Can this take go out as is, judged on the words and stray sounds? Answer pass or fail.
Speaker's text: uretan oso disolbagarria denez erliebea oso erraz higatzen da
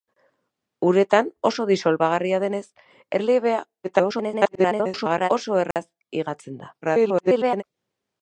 fail